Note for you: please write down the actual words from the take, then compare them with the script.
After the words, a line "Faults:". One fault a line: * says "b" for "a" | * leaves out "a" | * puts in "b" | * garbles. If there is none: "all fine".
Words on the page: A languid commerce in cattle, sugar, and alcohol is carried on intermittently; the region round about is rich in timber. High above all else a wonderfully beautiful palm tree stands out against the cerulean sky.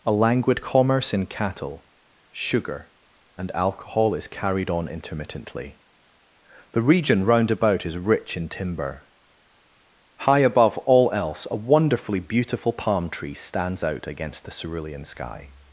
A languid commerce in cattle, sugar, and alcohol is carried on intermittently; the region round about is rich in timber. High above all else a wonderfully beautiful palm tree stands out against the cerulean sky.
Faults:
all fine